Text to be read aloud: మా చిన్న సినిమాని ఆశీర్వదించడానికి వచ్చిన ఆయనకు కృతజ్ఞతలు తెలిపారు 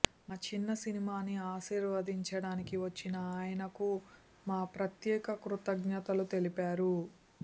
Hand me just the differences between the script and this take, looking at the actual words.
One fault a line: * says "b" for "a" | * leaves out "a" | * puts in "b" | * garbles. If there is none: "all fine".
* puts in "మా ప్రత్యేక"